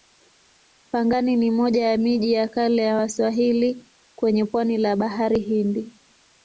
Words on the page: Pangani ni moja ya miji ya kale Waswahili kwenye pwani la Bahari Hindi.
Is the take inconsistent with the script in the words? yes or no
yes